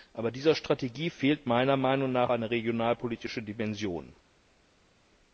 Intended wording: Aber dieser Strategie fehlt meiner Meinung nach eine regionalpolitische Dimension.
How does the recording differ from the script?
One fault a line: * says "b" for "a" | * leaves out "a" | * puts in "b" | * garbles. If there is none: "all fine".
all fine